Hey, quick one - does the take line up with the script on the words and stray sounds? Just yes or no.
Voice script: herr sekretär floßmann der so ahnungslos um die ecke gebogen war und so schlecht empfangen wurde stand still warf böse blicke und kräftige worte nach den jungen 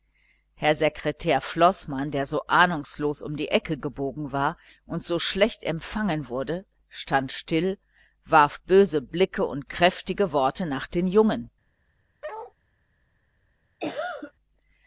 no